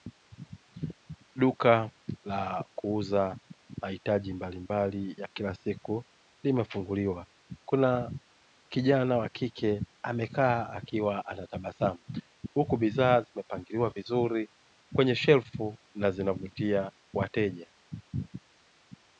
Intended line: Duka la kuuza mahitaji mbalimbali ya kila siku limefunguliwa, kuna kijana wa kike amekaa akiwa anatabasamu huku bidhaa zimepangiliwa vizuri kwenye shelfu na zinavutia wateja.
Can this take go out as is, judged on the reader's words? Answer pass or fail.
pass